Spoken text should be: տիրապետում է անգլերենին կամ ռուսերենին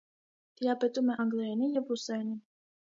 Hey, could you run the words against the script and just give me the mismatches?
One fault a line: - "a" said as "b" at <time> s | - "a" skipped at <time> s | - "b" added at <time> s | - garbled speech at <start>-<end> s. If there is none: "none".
- "կամ" said as "և" at 1.8 s